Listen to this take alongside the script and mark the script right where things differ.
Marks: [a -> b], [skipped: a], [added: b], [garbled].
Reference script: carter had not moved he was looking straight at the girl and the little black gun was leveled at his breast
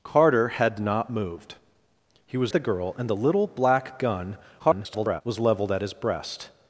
carter had not moved he was [skipped: looking straight at] the girl and the little black gun [garbled] was leveled at his breast